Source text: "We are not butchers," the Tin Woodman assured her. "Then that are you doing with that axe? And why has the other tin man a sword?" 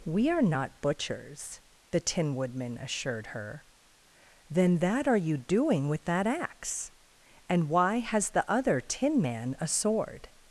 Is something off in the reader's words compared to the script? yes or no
no